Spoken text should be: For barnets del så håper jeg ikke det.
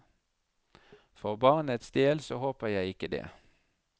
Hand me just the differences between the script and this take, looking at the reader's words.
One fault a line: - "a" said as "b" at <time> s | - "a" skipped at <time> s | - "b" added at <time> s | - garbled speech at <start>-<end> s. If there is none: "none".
none